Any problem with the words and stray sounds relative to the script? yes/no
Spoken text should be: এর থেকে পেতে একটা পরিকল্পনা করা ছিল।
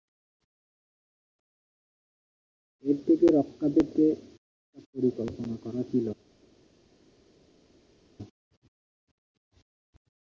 yes